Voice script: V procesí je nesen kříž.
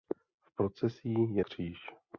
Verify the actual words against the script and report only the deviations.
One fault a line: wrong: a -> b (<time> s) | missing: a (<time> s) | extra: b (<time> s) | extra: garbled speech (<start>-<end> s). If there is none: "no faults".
missing: nesen (1.4 s)